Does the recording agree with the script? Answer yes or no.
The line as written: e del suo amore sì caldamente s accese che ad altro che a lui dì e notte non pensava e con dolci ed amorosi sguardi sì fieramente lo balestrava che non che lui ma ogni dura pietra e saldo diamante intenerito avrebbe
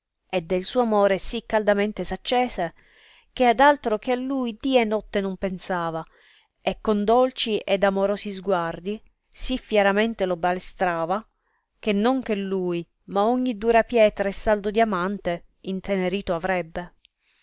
yes